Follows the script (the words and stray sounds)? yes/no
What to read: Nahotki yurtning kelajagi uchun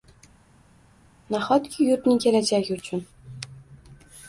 yes